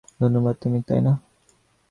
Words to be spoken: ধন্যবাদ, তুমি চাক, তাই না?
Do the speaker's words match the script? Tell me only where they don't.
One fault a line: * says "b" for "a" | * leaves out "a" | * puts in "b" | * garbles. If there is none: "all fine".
* leaves out "চাক"